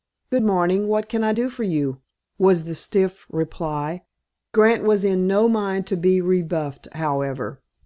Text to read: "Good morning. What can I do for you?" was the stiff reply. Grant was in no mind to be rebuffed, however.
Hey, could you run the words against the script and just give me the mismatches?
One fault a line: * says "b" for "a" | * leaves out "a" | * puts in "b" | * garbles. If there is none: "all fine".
all fine